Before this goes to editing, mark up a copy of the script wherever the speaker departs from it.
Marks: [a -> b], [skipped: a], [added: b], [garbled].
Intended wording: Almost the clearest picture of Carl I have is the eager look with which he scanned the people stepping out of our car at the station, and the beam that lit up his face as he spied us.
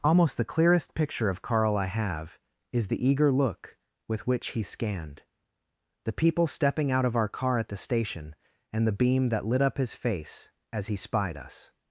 Almost the clearest picture of Carl I have is the eager look with which he scanned the people stepping out of our car at the station, and the beam that lit up his face as he spied us.